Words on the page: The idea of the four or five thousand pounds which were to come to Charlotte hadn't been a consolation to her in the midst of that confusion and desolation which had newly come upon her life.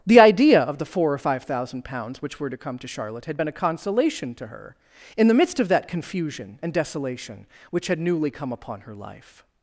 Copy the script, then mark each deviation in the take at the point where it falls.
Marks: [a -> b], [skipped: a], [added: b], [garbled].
The idea of the four or five thousand pounds which were to come to Charlotte [hadn't -> had] been a consolation to her in the midst of that confusion and desolation which had newly come upon her life.